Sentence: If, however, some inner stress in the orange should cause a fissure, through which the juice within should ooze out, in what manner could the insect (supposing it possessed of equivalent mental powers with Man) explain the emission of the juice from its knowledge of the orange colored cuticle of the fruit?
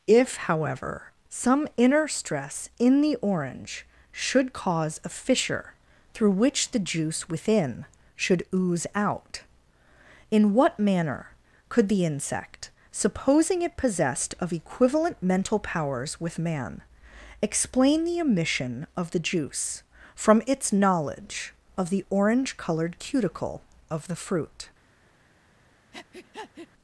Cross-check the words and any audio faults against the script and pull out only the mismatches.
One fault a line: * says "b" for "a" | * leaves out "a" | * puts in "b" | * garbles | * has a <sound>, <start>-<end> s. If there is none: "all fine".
* has a breath, 25.9-26.7 s